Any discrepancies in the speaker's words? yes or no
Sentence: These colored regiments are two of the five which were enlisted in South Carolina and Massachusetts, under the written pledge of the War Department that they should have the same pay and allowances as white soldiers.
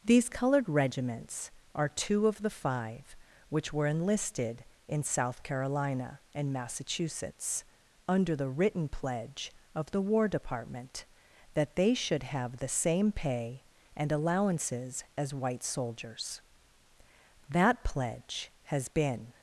yes